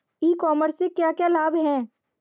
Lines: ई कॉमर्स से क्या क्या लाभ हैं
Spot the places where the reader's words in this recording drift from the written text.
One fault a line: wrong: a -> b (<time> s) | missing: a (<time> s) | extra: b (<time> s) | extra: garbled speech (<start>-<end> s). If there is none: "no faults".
no faults